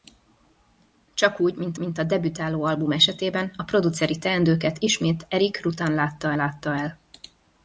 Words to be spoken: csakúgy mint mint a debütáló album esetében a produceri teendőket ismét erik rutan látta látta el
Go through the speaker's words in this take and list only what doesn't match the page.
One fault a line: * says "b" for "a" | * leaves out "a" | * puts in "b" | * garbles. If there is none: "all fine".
all fine